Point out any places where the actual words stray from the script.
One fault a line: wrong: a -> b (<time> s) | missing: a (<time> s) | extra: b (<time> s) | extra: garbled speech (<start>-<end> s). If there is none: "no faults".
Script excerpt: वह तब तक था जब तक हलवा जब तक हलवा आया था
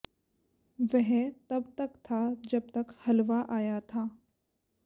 missing: जब तक हलवा (3.5 s)